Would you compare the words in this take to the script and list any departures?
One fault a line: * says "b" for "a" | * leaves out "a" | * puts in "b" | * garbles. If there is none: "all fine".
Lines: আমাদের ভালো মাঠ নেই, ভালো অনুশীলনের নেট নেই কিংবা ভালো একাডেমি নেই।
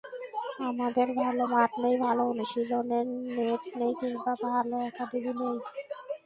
all fine